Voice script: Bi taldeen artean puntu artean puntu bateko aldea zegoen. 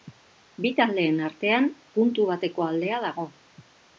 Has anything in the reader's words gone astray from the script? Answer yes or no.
yes